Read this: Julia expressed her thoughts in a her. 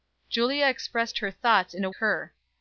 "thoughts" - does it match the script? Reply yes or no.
yes